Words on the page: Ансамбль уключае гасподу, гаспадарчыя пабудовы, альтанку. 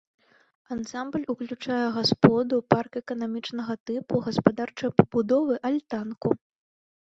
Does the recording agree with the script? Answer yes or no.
no